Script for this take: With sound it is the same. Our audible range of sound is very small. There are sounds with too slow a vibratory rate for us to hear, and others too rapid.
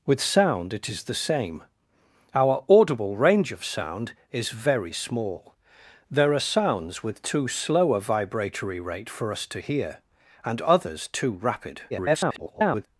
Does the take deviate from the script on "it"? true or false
false